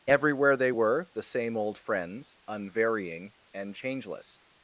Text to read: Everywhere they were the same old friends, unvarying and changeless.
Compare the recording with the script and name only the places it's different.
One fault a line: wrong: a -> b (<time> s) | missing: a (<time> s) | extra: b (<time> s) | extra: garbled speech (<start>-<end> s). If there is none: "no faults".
no faults